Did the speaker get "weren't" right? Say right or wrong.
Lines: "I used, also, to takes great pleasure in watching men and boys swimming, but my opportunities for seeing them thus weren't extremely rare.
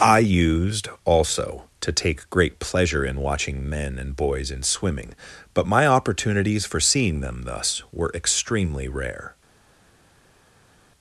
wrong